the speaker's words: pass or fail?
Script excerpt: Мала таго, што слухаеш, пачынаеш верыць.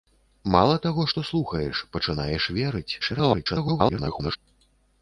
fail